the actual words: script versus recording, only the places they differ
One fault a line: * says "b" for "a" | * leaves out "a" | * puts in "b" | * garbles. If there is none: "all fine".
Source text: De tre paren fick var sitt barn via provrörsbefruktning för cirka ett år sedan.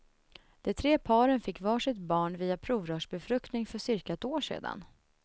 all fine